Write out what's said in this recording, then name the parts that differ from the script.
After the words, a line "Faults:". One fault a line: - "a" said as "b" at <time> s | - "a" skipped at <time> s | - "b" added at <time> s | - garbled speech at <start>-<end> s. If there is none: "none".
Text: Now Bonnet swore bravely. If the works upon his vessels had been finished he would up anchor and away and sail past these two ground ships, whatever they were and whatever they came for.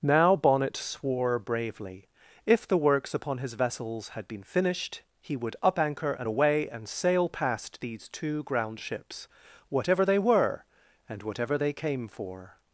Now Bonnet swore bravely. If the works upon his vessels had been finished he would up anchor and away and sail past these two ground ships, whatever they were and whatever they came for.
Faults:
none